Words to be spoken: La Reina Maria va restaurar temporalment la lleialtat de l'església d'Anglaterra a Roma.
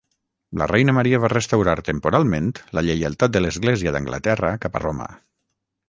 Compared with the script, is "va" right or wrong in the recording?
right